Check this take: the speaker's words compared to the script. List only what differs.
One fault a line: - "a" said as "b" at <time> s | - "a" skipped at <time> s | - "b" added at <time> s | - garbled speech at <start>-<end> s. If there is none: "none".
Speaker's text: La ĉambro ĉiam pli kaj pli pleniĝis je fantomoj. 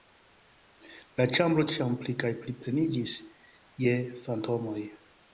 none